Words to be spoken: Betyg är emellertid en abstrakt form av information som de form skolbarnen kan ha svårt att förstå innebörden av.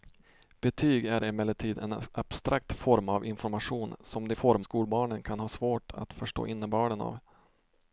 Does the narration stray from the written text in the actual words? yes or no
no